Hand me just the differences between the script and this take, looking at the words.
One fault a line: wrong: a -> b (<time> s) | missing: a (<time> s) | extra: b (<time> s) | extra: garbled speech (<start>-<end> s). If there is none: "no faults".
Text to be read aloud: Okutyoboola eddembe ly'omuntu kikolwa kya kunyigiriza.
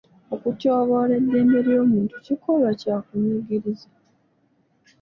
no faults